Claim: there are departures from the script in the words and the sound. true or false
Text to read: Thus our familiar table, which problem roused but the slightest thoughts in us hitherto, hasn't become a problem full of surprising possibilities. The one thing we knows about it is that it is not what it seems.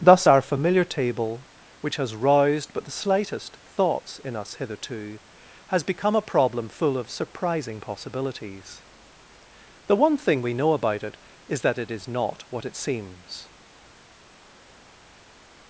true